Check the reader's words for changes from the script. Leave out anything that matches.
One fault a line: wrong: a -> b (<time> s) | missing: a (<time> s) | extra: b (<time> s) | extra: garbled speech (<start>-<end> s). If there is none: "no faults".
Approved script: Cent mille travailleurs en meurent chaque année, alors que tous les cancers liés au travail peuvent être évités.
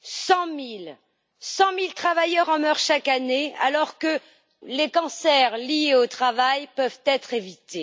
missing: tous (4.2 s)